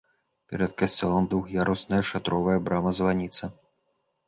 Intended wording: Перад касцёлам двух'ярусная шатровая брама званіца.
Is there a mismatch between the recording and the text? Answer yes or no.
no